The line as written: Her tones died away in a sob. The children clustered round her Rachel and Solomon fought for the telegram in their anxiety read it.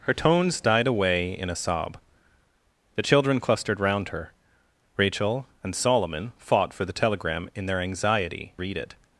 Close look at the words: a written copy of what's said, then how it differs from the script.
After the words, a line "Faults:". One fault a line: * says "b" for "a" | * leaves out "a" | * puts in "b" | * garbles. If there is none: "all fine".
Her tones died away in a sob. The children clustered round her Rachel and Solomon fought for the telegram in their anxiety read it.
Faults:
all fine